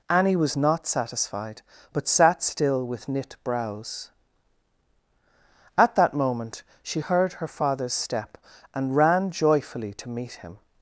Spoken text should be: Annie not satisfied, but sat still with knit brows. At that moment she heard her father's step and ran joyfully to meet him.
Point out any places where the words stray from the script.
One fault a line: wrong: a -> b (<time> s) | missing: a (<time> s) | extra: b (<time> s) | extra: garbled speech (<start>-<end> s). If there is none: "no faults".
extra: was (0.3 s)